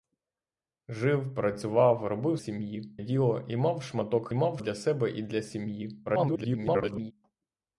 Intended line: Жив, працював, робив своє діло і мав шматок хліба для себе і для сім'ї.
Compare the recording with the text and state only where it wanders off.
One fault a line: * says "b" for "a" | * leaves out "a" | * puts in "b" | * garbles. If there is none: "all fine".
* says "сім'ї" for "своє"
* says "мав" for "хліба"
* garbles